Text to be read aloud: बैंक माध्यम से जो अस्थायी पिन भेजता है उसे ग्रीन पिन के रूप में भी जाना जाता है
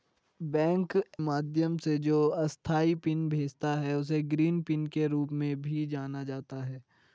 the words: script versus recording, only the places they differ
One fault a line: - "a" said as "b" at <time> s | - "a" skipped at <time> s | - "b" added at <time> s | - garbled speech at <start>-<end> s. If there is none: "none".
none